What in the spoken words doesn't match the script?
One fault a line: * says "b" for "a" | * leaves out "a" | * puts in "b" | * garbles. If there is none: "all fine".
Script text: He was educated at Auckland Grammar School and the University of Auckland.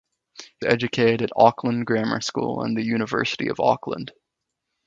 * leaves out "was"